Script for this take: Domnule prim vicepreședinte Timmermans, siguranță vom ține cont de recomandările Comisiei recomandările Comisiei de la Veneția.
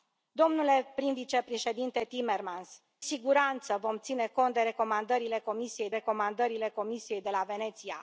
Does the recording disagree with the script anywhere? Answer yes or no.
no